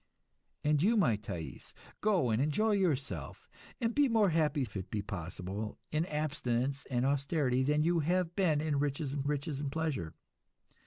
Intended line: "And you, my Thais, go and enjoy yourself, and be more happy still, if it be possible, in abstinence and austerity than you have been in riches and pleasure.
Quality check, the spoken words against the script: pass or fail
fail